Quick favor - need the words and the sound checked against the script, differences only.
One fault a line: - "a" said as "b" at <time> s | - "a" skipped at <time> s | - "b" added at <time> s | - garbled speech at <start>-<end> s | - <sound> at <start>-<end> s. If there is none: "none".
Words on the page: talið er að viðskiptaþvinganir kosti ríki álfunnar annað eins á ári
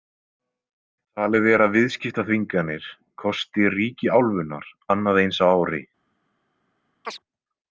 - chirp at 7.0-7.2 s